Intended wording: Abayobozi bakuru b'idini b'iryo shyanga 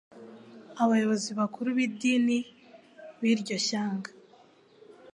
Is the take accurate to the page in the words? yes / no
yes